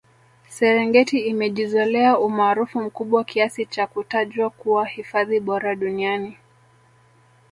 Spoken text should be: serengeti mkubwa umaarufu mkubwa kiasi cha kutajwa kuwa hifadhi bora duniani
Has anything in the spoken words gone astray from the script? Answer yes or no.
yes